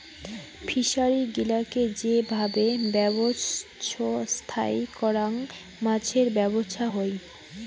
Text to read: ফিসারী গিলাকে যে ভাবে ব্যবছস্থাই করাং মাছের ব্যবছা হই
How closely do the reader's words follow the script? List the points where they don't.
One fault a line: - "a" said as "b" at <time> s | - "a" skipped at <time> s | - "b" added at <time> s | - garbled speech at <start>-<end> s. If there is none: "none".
none